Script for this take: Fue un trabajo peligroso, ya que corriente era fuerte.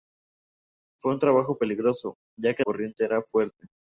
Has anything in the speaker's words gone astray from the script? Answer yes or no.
no